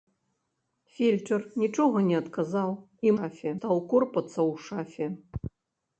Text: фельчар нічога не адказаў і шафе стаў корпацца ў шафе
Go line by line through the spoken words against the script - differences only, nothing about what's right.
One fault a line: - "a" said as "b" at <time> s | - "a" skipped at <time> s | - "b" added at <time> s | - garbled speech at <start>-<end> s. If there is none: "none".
none